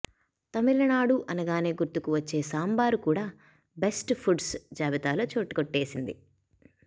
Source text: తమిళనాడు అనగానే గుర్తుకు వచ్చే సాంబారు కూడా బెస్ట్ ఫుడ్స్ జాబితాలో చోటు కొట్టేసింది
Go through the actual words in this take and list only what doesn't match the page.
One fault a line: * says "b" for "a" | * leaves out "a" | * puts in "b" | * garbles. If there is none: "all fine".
all fine